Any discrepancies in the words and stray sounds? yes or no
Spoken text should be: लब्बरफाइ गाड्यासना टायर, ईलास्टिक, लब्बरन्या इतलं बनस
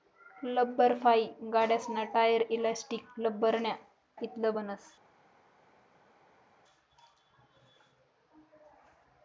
no